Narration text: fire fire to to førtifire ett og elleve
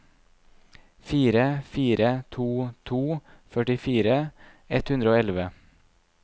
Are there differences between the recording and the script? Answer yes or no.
yes